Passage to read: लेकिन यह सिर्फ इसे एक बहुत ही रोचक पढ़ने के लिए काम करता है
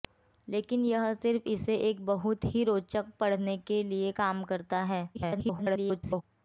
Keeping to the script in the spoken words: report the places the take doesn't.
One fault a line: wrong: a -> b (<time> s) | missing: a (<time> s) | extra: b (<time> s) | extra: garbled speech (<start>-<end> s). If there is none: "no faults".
extra: garbled speech (5.1-6.2 s)